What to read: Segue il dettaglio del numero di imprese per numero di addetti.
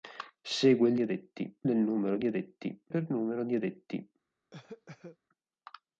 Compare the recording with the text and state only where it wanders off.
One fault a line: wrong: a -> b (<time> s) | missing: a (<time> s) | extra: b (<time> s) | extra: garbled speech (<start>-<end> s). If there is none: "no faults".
wrong: dettaglio -> addetti (1.0 s)
wrong: imprese -> addetti (2.2 s)